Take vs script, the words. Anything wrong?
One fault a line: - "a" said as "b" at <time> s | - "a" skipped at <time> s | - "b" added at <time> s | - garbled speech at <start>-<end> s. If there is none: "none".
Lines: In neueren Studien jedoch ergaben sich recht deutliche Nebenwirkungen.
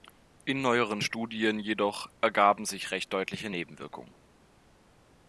none